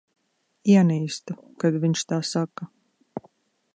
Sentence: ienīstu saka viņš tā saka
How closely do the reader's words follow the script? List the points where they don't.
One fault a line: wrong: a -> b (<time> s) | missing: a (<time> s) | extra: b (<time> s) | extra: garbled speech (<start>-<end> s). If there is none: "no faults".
wrong: saka -> kad (1.6 s)